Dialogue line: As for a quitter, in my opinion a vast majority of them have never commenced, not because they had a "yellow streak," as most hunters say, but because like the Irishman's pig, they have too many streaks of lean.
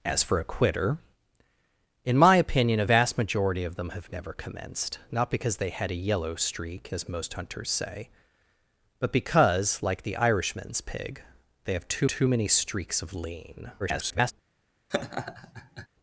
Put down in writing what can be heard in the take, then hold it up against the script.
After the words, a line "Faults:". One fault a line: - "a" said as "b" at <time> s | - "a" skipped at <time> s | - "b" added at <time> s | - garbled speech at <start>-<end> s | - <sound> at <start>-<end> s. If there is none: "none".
As for a quitter, in my opinion a vast majority of them have never commenced, not because they had a "yellow streak," as most hunters say, but because like the Irishman's pig, they have too too many streaks of lean. [garbled]
Faults:
- "too" added at 12.1 s
- garbled speech at 13.8-14.3 s
- laugh at 14.9-15.9 s